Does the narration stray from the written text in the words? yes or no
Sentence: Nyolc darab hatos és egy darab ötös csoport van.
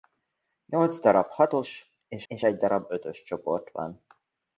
yes